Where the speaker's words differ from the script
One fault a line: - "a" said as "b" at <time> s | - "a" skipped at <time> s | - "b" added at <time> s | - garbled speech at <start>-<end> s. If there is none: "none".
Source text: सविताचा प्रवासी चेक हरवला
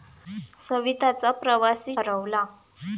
- "चेक" skipped at 1.9 s